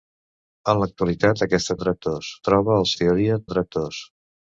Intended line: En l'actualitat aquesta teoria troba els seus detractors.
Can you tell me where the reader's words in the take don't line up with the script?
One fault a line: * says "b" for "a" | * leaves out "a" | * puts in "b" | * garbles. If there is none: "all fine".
* says "detractors" for "teoria"
* says "teoria" for "seus"